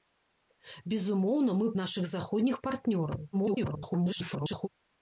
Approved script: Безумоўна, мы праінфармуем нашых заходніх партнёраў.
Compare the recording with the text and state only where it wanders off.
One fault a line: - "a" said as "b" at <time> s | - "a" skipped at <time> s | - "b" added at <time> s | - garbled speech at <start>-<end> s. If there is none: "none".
- "праінфармуем" skipped at 1.7 s
- garbled speech at 3.3-4.7 s